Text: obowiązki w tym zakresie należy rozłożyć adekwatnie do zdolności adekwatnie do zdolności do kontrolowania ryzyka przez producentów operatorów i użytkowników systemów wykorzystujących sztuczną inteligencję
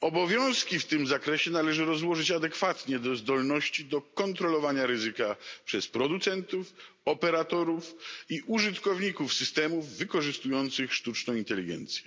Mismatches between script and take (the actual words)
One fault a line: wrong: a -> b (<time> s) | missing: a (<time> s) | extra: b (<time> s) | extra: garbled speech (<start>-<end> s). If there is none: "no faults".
missing: adekwatnie do zdolności (3.9 s)